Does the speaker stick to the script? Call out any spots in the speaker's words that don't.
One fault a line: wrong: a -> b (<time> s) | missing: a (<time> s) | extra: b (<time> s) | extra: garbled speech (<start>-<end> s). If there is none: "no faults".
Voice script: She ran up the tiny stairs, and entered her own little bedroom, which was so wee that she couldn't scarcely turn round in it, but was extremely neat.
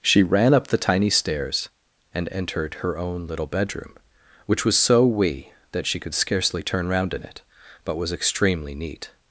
wrong: couldn't -> could (6.0 s)